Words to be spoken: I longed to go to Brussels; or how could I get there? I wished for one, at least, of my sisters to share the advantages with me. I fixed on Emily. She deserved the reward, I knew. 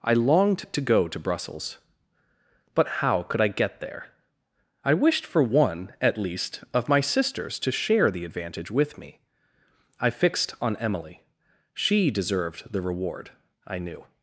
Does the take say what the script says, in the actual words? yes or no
no